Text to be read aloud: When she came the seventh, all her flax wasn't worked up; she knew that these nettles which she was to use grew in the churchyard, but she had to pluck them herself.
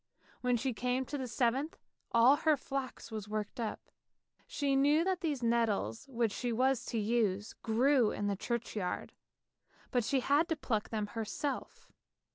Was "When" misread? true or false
false